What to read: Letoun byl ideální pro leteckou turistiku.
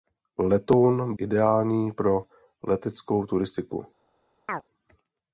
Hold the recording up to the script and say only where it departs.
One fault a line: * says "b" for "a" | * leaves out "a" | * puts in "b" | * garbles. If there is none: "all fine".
* leaves out "byl"